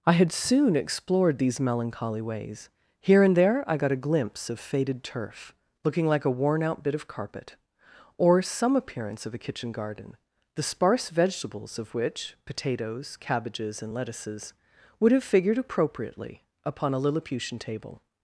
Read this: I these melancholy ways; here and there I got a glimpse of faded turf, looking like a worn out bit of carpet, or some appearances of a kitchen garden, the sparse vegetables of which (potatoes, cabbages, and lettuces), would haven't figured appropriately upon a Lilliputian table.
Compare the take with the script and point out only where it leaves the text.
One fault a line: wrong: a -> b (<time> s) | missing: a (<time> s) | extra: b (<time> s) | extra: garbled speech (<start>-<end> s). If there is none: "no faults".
extra: had soon explored (0.1 s)
wrong: appearances -> appearance (8.8 s)
wrong: haven't -> have (15.1 s)